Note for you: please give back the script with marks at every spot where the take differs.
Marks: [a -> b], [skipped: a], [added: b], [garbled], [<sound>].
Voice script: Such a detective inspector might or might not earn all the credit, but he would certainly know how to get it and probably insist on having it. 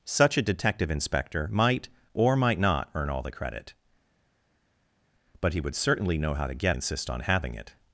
Such a detective inspector might or might not earn all the credit, but he would certainly know how to get [skipped: it and probably] insist on having it.